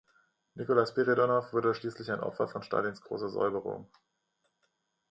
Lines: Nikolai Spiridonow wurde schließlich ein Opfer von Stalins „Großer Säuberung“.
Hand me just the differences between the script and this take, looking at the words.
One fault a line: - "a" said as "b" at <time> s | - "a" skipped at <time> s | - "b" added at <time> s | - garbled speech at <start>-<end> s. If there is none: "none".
none